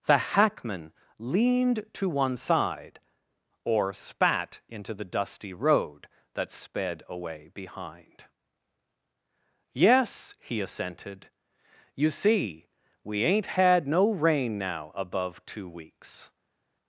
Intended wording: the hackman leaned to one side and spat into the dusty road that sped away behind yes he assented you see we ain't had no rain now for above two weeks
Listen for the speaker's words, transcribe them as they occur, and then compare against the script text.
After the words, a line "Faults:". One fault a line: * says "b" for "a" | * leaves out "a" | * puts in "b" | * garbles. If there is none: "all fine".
the hackman leaned to one side or spat into the dusty road that sped away behind yes he assented you see we ain't had no rain now above two weeks
Faults:
* says "or" for "and"
* leaves out "for"